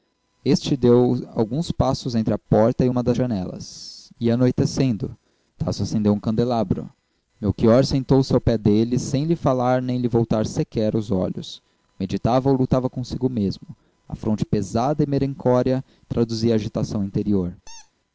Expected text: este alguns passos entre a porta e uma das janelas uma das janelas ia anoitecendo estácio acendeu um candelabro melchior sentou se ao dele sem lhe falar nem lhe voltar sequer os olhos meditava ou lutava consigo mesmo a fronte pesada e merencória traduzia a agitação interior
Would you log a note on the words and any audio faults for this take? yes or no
yes